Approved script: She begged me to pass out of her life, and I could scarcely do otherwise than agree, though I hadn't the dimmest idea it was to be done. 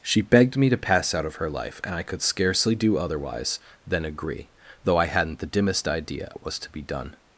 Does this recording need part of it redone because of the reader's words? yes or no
no